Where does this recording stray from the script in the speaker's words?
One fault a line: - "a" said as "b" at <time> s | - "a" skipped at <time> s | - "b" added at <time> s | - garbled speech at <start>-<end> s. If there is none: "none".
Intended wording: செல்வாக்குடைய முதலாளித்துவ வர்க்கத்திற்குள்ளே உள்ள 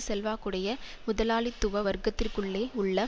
none